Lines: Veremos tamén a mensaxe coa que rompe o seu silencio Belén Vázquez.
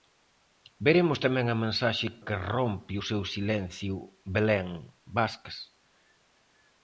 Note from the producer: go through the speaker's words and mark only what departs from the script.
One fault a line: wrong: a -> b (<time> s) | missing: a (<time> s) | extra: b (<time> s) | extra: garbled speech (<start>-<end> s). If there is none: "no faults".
missing: coa (2.1 s)